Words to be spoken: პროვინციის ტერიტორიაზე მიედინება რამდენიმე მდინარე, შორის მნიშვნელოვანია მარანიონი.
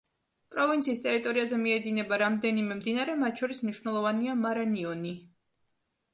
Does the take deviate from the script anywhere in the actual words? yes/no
yes